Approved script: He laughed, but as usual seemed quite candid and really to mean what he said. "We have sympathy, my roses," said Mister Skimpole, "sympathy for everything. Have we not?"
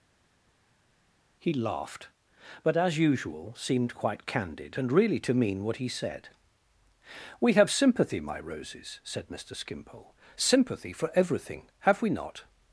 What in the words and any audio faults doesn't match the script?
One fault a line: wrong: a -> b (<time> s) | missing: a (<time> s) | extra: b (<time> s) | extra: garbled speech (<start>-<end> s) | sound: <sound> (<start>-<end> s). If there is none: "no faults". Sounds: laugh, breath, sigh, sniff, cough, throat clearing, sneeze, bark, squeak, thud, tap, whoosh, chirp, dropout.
no faults